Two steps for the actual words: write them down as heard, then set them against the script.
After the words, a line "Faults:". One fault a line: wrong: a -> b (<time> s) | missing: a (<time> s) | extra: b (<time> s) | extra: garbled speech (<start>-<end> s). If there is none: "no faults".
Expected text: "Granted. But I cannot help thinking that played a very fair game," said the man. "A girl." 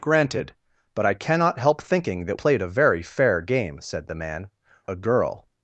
"Granted. But I cannot help thinking that played a very fair game," said the man. "A girl."
Faults:
no faults